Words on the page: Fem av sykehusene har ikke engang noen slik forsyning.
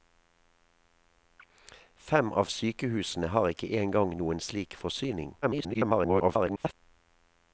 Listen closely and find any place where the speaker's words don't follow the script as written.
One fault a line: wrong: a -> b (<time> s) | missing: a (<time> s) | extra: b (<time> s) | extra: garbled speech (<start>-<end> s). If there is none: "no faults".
extra: garbled speech (5.4-6.7 s)